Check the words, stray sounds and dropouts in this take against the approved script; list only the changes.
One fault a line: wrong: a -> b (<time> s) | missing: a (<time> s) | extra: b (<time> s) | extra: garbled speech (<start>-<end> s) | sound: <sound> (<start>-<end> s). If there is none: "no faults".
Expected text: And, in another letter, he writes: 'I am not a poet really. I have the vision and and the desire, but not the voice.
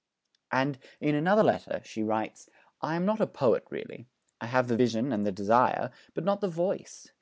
wrong: he -> she (1.8 s)
missing: and (5.2 s)